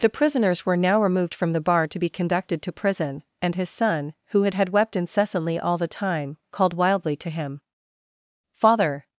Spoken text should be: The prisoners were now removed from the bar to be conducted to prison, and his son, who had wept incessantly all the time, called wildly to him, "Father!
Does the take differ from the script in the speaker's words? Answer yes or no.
yes